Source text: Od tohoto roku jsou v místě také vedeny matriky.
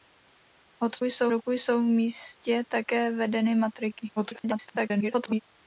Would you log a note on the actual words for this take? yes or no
yes